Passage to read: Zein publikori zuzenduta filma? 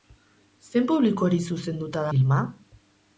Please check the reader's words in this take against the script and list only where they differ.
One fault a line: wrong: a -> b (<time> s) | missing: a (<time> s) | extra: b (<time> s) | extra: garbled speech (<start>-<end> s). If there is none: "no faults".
no faults